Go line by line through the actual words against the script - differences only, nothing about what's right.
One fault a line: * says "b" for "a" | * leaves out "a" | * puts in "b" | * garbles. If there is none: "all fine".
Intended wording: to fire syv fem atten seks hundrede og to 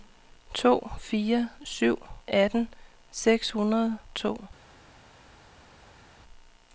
* leaves out "fem"
* leaves out "og"